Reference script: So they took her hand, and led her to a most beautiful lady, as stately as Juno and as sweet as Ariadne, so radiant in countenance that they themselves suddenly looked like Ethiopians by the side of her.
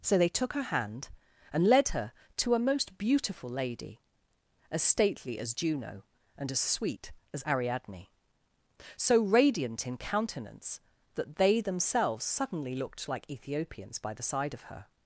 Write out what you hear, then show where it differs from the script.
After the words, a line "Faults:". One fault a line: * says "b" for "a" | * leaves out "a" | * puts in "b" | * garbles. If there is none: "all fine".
So they took her hand, and led her to a most beautiful lady, as stately as Juno and as sweet as Ariadne, so radiant in countenance that they themselves suddenly looked like Ethiopians by the side of her.
Faults:
all fine